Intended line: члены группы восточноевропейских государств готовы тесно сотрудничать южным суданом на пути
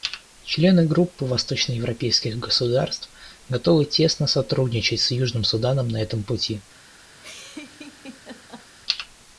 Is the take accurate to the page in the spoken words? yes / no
no